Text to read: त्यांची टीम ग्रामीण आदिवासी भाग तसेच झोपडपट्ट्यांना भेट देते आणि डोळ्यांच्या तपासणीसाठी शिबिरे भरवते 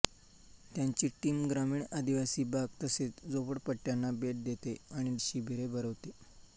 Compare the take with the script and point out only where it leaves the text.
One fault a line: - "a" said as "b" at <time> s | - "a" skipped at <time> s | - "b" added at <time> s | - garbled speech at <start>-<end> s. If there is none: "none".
- "डोळ्यांच्या तपासणीसाठी" skipped at 5.2 s